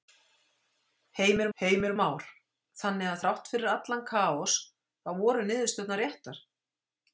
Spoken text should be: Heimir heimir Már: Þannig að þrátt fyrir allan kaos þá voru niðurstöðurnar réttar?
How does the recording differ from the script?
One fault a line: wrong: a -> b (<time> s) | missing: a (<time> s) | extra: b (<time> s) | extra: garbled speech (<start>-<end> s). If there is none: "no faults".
no faults